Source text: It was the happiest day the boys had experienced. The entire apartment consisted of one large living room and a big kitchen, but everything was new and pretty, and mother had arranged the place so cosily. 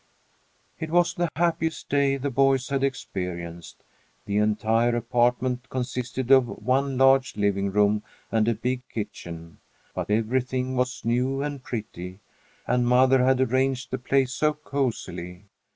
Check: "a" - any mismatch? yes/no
no